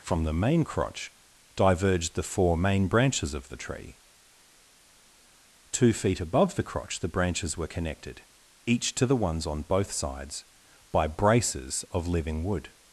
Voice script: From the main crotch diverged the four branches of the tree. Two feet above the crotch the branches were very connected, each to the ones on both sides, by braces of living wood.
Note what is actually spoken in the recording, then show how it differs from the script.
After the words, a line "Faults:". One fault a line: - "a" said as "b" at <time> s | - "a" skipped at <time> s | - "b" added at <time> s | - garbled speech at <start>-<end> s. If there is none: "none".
From the main crotch diverged the four main branches of the tree. Two feet above the crotch the branches were connected, each to the ones on both sides, by braces of living wood.
Faults:
- "main" added at 2.6 s
- "very" skipped at 7.7 s